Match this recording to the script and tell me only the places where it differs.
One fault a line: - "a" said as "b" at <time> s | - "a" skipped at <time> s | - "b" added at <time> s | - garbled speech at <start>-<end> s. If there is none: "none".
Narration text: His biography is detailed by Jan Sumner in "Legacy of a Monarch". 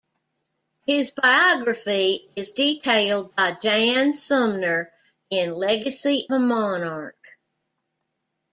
- "of" skipped at 6.3 s